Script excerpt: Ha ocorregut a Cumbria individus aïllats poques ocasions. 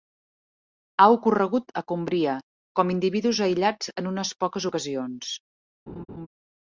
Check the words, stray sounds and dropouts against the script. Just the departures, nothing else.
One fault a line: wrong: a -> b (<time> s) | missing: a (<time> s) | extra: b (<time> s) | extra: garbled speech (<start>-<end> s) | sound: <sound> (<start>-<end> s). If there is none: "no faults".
extra: com (2.8 s)
extra: en unes (4.0 s)
sound: laugh (5.9-6.3 s)